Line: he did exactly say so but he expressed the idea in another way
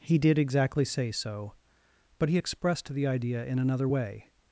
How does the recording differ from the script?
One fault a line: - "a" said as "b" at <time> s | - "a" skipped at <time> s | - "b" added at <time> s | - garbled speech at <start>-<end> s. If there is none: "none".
none